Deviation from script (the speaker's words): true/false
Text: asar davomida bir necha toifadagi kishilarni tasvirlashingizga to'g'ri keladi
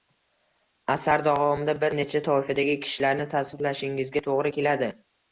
false